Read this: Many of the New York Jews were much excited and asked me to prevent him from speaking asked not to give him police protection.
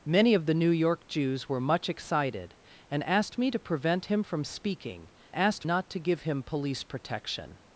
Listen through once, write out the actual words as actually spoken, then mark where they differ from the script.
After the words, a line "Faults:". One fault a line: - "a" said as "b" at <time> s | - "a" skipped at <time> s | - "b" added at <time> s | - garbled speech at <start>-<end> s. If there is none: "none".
Many of the New York Jews were much excited and asked me to prevent him from speaking asked not to give him police protection.
Faults:
none